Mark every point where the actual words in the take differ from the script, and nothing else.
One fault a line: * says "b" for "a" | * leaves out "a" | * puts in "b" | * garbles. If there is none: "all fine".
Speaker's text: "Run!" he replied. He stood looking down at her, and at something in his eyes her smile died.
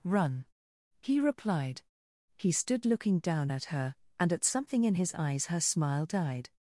all fine